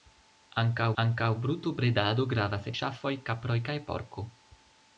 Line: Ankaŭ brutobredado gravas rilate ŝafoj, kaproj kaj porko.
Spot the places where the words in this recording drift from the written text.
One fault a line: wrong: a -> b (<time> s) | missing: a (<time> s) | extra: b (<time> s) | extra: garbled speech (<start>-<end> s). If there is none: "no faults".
extra: ankaŭ (1.0 s)
missing: rilate (2.7 s)